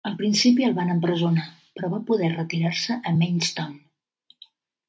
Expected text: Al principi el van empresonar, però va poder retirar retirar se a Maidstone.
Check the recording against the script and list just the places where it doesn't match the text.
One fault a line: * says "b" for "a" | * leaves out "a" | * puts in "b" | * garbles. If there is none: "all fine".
* leaves out "retirar"